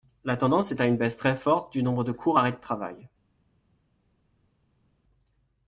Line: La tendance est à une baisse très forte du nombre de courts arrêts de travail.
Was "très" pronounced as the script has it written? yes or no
yes